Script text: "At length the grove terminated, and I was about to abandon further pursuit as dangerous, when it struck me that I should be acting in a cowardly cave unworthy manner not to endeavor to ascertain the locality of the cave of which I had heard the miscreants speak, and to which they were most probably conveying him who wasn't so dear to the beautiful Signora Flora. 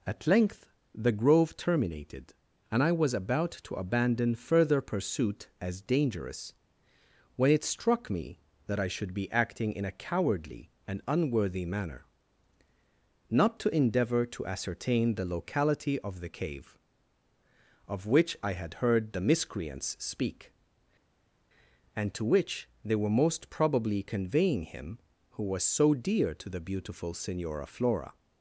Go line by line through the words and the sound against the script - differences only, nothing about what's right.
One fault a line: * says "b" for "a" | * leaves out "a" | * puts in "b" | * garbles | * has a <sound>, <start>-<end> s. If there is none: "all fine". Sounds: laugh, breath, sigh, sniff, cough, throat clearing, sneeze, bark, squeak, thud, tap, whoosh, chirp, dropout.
* says "and" for "cave"
* says "was" for "wasn't"